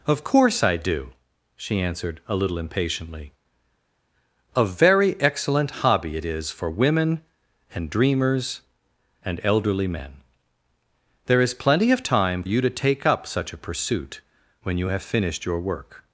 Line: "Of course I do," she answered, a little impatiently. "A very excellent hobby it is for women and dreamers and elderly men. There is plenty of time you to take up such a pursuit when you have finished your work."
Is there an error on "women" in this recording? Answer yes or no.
no